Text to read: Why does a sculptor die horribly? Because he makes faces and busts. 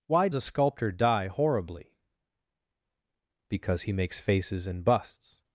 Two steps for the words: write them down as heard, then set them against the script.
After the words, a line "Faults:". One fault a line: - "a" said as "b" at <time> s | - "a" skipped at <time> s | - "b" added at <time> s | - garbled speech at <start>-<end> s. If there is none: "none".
Why a sculptor die horribly? Because he makes faces and busts.
Faults:
- "does" skipped at 0.3 s